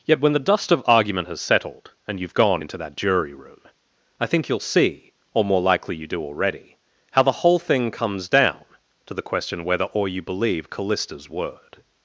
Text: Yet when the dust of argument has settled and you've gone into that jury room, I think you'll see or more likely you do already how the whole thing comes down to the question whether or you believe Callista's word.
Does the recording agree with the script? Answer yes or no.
yes